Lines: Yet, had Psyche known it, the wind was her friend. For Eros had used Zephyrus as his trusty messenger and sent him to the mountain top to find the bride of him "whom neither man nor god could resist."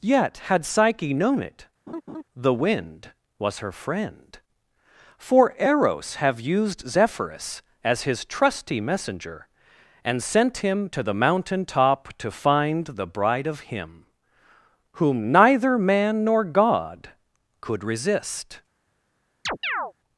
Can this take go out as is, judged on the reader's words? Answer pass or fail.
fail